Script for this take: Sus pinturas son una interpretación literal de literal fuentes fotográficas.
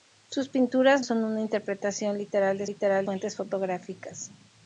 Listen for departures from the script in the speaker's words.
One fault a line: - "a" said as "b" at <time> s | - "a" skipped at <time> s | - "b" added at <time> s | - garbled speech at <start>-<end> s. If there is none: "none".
none